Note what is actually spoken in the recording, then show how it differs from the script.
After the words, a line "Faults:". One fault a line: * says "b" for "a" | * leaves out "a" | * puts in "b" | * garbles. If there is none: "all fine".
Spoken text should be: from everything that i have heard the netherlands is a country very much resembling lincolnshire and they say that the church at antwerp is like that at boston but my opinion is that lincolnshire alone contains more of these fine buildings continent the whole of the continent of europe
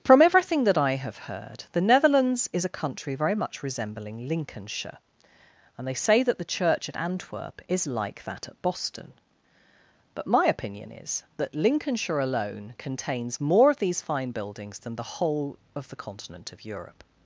from everything that i have heard the netherlands is a country very much resembling lincolnshire and they say that the church at antwerp is like that at boston but my opinion is that lincolnshire alone contains more of these fine buildings than the whole of the continent of europe
Faults:
* says "than" for "continent"